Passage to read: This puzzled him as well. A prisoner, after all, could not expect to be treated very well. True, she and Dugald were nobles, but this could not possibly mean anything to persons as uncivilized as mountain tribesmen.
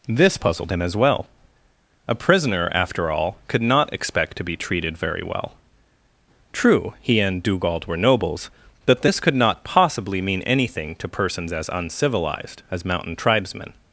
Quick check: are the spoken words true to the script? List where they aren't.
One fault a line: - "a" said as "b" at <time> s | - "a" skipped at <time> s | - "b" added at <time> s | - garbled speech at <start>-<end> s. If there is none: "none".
- "she" said as "he" at 7.0 s